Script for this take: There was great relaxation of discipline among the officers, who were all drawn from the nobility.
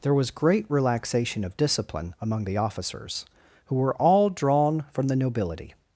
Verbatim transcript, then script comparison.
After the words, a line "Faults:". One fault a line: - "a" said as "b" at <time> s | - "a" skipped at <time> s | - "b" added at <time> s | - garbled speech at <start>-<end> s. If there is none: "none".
There was great relaxation of discipline among the officers, who were all drawn from the nobility.
Faults:
none